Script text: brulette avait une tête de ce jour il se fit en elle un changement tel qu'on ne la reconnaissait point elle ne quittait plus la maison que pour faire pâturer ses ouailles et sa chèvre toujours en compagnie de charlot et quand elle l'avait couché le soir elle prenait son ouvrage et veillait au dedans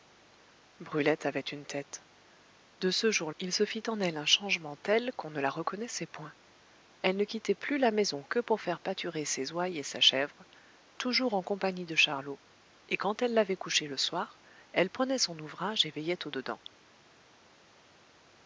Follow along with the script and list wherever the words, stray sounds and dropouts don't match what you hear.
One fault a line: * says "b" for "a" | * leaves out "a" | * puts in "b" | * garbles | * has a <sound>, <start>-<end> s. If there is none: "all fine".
all fine